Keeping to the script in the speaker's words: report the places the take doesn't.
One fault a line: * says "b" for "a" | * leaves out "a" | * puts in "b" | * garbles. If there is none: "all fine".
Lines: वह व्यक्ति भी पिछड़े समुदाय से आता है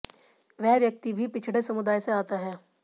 all fine